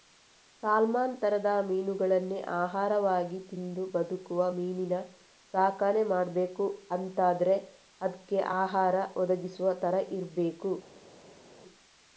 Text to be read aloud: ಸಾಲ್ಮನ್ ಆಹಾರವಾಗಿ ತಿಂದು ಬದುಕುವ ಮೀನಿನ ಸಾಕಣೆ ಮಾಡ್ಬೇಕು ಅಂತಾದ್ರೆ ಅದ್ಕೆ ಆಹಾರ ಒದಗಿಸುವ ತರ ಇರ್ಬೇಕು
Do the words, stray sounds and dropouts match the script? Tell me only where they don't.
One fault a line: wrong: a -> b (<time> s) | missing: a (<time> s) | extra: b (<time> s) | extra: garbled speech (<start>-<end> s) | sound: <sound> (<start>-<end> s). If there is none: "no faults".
extra: ತರದ ಮೀನುಗಳನ್ನೇ (1.2 s)